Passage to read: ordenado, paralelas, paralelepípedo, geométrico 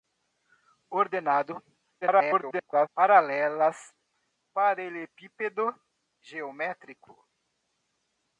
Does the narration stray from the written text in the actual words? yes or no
yes